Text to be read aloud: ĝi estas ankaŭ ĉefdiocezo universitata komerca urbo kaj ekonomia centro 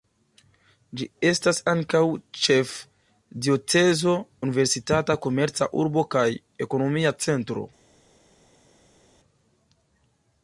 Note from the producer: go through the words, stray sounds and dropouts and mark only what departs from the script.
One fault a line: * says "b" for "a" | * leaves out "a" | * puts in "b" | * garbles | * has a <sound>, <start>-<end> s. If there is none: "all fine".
all fine